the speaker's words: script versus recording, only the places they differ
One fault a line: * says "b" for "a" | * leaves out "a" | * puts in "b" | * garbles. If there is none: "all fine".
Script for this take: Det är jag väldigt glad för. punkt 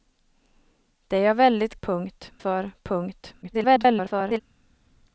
* says "punkt" for "glad"
* garbles